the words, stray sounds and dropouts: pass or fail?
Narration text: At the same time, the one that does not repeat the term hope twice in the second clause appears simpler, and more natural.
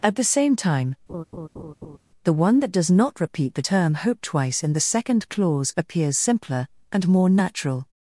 fail